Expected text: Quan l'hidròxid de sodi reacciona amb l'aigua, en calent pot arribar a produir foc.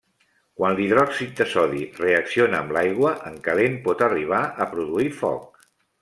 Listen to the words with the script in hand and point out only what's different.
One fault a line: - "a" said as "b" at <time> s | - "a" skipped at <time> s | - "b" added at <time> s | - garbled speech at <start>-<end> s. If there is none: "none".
none